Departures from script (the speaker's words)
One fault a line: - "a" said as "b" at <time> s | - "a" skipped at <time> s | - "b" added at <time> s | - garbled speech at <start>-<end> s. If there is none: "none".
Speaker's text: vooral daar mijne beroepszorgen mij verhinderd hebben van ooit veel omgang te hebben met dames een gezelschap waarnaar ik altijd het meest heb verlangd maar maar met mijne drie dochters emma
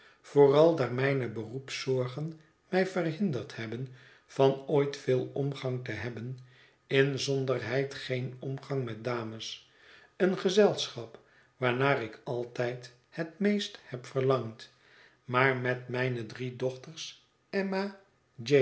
- "inzonderheid geen omgang" added at 6.9 s
- "maar" skipped at 15.6 s